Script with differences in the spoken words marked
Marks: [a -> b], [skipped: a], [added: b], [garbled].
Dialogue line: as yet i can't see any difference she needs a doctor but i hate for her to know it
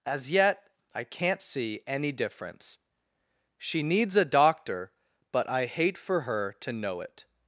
as yet i can't see any difference she needs a doctor but i hate for her to know it